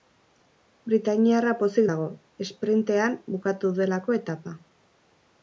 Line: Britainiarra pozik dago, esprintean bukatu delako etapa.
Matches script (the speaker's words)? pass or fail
pass